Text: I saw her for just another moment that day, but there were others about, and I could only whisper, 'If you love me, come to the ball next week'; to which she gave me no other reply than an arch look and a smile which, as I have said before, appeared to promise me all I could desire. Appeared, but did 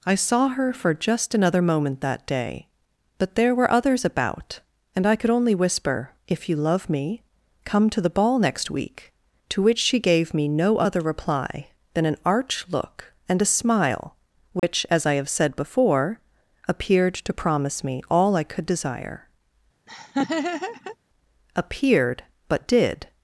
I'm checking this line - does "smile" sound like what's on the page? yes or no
yes